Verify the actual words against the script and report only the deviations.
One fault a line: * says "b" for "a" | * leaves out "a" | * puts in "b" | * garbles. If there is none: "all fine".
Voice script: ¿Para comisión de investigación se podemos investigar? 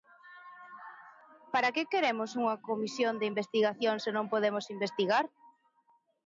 * puts in "que queremos unha"
* puts in "non"